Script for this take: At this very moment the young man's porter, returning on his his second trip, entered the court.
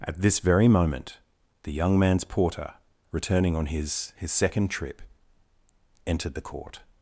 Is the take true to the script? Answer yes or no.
yes